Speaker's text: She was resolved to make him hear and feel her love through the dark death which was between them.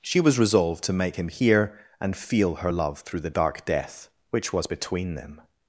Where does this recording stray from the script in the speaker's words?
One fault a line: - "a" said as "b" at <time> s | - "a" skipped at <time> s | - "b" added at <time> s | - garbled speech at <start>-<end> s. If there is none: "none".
none